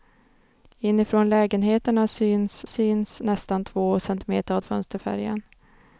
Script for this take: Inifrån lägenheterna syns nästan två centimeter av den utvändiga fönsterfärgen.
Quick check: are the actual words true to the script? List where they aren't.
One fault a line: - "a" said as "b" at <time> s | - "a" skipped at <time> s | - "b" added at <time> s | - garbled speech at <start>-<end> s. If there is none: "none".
- "syns" added at 2.7 s
- "den utvändiga" skipped at 4.6 s